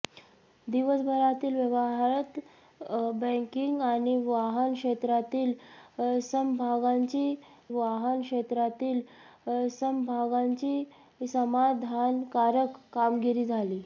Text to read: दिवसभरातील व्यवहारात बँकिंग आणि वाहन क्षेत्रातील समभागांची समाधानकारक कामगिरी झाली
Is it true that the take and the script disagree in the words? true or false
true